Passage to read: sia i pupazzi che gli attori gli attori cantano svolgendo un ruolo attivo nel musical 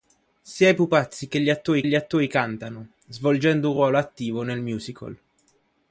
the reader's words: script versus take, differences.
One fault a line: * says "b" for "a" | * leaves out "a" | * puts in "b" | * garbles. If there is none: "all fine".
all fine